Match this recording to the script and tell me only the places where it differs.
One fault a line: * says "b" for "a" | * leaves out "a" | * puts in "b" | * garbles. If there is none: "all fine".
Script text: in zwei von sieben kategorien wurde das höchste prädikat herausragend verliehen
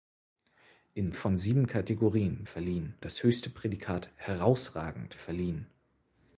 * leaves out "zwei"
* says "verliehen" for "wurde"